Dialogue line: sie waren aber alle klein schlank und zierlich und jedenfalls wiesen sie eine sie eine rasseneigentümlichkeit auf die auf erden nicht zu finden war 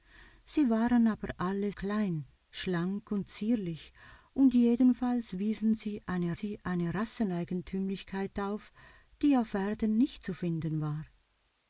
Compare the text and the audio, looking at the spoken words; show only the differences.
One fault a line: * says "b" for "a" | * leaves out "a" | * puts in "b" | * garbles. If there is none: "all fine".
all fine